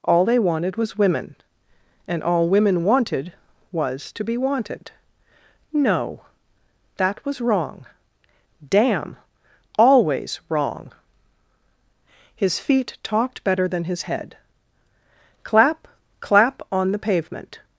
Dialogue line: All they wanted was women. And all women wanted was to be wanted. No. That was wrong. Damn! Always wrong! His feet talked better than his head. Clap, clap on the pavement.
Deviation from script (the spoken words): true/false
false